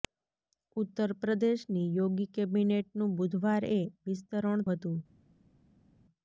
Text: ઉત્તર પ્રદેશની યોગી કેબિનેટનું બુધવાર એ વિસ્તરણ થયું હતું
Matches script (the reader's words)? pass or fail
fail